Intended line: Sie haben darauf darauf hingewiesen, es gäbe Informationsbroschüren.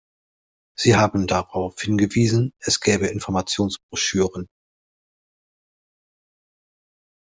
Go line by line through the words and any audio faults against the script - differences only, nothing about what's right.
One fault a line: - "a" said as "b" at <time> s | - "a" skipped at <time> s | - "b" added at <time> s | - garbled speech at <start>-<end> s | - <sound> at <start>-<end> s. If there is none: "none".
- "darauf" skipped at 1.8 s